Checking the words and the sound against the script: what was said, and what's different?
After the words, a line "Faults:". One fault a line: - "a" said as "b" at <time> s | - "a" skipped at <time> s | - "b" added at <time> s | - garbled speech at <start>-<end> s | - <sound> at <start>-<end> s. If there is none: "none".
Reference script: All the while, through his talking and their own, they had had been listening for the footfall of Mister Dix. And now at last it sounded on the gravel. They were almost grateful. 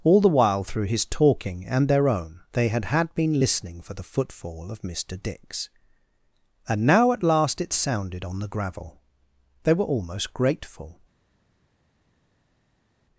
All the while, through his talking and their own, they had had been listening for the footfall of Mister Dix. And now at last it sounded on the gravel. They were almost grateful.
Faults:
none